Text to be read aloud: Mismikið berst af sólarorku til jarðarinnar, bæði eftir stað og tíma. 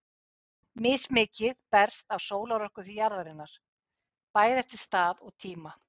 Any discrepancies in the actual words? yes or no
no